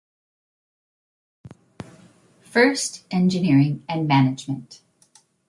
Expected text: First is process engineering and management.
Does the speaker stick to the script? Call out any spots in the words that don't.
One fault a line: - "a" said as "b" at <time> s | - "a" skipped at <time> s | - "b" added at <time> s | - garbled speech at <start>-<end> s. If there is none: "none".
- "is process" skipped at 3.0 s